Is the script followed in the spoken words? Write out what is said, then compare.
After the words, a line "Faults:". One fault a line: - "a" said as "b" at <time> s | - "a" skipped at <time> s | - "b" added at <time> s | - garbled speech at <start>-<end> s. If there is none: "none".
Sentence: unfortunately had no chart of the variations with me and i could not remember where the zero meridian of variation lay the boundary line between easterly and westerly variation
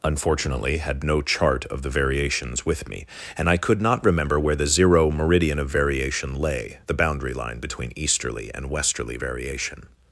unfortunately had no chart of the variations with me and i could not remember where the zero meridian of variation lay the boundary line between easterly and westerly variation
Faults:
none